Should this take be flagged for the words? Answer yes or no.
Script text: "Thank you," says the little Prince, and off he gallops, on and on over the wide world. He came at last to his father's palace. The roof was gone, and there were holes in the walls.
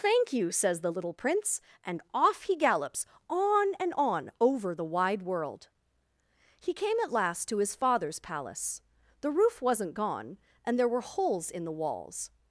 yes